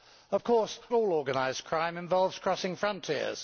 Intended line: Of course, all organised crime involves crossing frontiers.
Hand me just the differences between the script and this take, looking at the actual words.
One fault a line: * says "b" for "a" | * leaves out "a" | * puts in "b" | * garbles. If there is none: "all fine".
all fine